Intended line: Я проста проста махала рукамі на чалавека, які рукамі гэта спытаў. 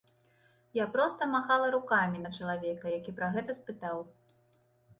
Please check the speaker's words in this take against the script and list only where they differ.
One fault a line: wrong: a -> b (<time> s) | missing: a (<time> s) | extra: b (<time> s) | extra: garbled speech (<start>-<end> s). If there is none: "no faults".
missing: проста (1.3 s)
wrong: рукамі -> пра (3.2 s)